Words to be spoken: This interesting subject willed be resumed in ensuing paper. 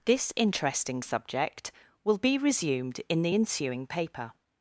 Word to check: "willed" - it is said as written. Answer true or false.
false